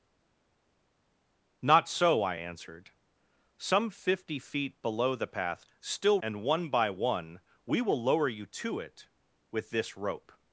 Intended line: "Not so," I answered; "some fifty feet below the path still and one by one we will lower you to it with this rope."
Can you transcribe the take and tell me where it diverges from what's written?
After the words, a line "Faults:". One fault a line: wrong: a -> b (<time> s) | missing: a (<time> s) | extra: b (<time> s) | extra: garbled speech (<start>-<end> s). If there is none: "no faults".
"Not so," I answered; "some fifty feet below the path still and one by one we will lower you to it with this rope."
Faults:
no faults